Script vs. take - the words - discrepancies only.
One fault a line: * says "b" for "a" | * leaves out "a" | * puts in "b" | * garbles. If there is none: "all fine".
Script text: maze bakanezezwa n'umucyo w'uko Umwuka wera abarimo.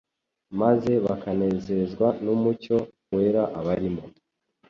* leaves out "w'uko Umwuka"